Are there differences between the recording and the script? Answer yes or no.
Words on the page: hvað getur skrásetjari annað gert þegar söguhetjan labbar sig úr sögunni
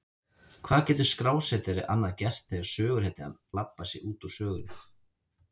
yes